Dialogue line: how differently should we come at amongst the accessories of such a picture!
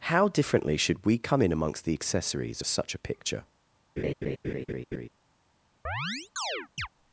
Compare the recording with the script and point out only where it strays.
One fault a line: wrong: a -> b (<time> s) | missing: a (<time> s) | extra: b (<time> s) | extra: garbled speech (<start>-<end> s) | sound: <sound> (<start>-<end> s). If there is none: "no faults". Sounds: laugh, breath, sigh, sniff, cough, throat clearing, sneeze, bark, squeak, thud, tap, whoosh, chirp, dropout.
wrong: at -> in (1.4 s)
sound: laugh (4.0-5.1 s)
sound: chirp (5.8-6.9 s)